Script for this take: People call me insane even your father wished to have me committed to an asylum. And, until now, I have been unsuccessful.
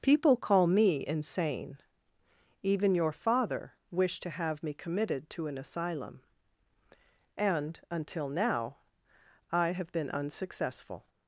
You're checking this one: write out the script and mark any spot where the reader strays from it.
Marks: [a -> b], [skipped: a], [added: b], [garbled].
People call me insane even your father wished to have me committed to an asylum. And, until now, I have been unsuccessful.